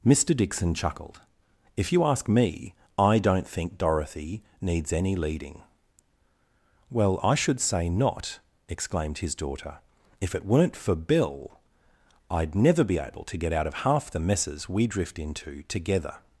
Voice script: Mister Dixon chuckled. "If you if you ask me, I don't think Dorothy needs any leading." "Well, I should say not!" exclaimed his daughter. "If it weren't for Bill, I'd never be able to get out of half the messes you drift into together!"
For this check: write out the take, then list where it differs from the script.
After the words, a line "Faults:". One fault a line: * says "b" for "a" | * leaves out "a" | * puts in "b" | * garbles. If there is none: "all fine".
Mister Dixon chuckled. "If you ask me, I don't think Dorothy needs any leading." "Well, I should say not!" exclaimed his daughter. "If it weren't for Bill, I'd never be able to get out of half the messes we drift into together!"
Faults:
* leaves out "if you"
* says "we" for "you"